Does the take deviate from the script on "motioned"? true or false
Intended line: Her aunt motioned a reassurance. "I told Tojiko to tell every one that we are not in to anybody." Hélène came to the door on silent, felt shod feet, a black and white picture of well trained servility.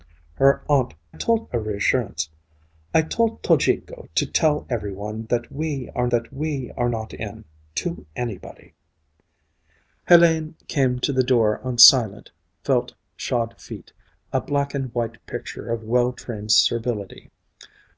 true